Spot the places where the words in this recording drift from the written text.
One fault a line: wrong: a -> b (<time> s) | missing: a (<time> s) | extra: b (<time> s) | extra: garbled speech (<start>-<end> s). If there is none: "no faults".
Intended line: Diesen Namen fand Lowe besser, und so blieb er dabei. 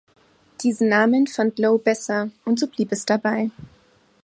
wrong: er -> es (2.9 s)